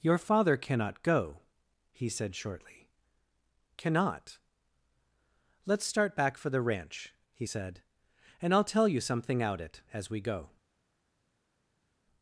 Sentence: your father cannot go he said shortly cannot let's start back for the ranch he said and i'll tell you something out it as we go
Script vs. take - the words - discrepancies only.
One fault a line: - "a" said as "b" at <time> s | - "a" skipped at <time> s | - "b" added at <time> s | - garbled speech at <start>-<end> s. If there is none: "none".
none